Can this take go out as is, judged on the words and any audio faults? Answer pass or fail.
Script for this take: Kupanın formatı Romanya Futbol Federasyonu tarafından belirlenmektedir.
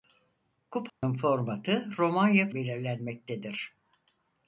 fail